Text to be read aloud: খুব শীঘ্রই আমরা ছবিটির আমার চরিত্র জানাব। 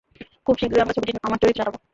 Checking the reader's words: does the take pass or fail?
pass